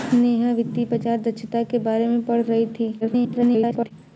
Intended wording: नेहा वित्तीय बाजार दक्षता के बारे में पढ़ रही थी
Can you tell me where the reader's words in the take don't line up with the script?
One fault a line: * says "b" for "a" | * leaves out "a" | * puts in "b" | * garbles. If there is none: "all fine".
* garbles